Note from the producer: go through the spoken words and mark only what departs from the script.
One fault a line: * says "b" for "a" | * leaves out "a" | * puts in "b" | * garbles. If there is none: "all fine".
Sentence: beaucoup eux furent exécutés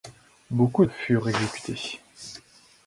all fine